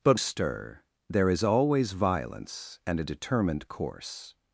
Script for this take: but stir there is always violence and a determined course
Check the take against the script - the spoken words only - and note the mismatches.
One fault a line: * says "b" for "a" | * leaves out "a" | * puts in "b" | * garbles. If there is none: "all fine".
all fine